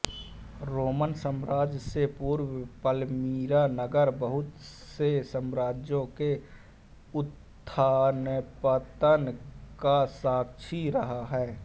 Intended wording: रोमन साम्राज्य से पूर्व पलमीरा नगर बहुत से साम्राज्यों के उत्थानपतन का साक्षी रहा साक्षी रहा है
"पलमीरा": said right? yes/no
yes